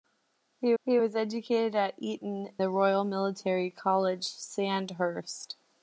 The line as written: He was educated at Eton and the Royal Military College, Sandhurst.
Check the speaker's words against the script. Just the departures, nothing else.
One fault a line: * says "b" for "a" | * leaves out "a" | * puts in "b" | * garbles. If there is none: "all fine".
* puts in "he"
* leaves out "and"